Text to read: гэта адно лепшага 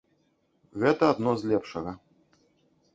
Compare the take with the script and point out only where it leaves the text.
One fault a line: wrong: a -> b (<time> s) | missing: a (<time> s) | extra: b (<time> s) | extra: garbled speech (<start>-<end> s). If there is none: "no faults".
extra: з (1.4 s)